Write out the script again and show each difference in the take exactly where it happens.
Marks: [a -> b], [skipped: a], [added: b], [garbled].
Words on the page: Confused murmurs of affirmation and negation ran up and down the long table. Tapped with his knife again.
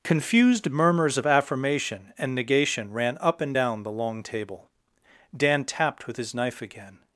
Confused murmurs of affirmation and negation ran up and down the long table. [added: Dan] Tapped with his knife again.